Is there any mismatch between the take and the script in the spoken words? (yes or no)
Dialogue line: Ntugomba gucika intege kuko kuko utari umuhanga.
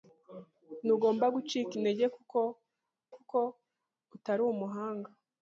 no